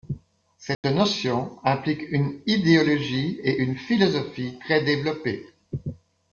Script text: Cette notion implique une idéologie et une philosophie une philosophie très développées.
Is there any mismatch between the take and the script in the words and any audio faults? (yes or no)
yes